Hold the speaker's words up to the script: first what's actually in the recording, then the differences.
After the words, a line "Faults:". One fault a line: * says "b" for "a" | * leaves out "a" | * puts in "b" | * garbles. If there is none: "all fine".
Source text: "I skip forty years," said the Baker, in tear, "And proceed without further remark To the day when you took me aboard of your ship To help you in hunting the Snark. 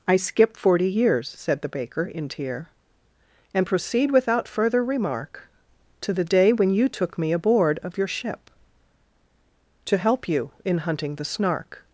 "I skip forty years," said the Baker, in tear, "And proceed without further remark To the day when you took me aboard of your ship To help you in hunting the Snark.
Faults:
all fine